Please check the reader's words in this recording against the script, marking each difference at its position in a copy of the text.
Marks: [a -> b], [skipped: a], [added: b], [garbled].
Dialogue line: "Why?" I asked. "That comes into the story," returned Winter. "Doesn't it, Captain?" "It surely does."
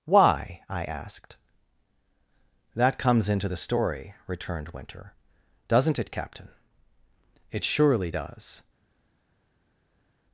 "Why?" I asked. "That comes into the story," returned Winter. "Doesn't it, Captain?" "It surely does."